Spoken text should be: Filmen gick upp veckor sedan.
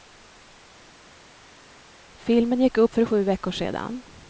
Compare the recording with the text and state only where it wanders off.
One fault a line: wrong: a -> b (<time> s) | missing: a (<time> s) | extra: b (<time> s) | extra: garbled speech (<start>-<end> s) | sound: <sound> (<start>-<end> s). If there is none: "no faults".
extra: för sju (2.9 s)